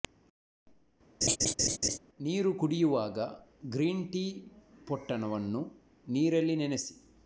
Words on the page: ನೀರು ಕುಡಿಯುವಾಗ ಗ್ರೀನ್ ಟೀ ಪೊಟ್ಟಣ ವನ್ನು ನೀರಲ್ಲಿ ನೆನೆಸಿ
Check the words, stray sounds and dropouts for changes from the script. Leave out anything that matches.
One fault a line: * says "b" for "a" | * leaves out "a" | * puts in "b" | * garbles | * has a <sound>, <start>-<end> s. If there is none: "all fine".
* has a laugh, 1.2-2.0 s